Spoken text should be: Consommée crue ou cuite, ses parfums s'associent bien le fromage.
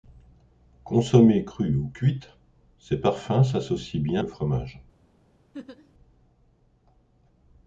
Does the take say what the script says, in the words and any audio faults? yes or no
no